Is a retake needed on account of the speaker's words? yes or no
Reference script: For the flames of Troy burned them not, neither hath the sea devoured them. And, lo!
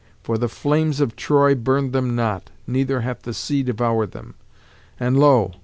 no